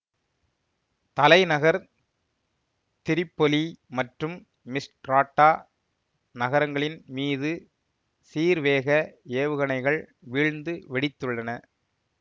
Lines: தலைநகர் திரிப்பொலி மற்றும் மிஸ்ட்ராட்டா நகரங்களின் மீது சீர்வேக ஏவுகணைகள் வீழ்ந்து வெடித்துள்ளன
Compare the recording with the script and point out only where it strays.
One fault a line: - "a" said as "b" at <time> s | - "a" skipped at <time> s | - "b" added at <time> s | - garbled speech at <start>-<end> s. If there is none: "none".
none